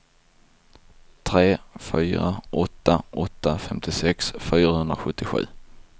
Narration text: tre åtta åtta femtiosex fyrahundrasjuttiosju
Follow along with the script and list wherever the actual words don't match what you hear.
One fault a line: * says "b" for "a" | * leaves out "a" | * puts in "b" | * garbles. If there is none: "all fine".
* puts in "fyra"